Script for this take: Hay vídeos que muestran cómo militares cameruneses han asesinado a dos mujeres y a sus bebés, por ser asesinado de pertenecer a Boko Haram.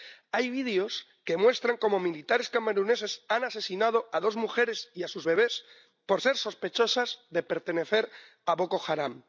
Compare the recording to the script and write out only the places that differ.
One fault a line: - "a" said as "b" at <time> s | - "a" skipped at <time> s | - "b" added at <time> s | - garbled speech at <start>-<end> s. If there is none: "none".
- "asesinado" said as "sospechosas" at 6.4 s